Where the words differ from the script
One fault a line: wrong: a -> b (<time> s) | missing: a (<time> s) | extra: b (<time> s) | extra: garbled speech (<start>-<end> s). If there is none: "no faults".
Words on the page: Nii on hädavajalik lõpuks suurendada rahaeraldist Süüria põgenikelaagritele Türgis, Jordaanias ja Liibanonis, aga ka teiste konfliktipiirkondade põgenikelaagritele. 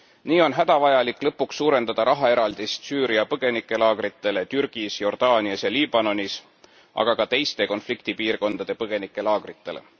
no faults